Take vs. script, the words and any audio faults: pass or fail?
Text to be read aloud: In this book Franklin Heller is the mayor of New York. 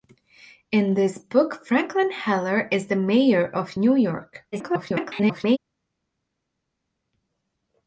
fail